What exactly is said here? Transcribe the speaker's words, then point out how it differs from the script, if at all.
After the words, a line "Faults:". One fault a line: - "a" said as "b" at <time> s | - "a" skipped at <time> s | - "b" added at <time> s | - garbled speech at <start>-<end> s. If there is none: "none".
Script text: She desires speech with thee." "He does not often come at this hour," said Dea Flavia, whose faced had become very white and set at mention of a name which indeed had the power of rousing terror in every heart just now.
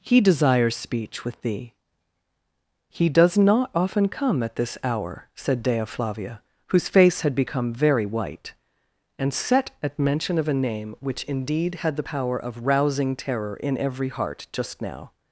He desires speech with thee." "He does not often come at this hour," said Dea Flavia, whose face had become very white and set at mention of a name which indeed had the power of rousing terror in every heart just now.
Faults:
- "She" said as "He" at 0.0 s
- "faced" said as "face" at 6.9 s